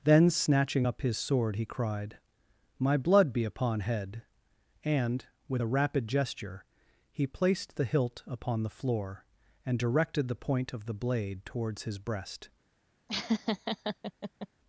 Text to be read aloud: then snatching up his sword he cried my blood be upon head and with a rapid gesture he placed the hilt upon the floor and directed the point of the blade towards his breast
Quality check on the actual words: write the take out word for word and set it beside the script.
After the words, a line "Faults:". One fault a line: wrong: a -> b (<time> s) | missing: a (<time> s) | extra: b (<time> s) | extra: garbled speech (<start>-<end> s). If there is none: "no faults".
then snatching up his sword he cried my blood be upon head and with a rapid gesture he placed the hilt upon the floor and directed the point of the blade towards his breast
Faults:
no faults